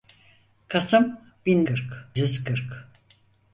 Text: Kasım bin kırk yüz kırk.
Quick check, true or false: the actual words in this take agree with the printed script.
true